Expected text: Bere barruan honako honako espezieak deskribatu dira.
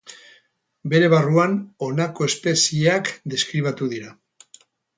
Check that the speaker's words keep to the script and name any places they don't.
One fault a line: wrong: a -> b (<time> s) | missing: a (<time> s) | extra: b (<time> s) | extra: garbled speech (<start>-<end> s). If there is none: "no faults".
missing: honako (2.3 s)